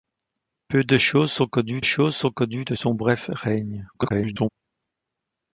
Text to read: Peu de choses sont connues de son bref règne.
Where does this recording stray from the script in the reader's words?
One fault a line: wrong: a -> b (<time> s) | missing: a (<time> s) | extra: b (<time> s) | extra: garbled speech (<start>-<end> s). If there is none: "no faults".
extra: choses sont connues (1.8 s)
extra: garbled speech (3.9-4.5 s)